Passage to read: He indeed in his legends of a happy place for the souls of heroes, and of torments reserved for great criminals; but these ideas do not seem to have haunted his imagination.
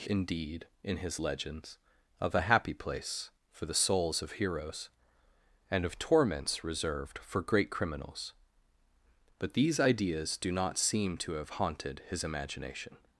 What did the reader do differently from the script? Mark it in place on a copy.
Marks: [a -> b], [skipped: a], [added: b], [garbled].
He indeed in his legends of a happy place for the souls of heroes, and of torments reserved for great criminals; but these ideas do not seem to have haunted his imagination.